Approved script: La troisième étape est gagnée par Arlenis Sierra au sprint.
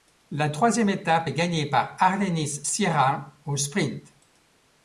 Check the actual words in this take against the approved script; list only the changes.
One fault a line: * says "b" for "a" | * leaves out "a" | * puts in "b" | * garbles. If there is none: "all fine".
all fine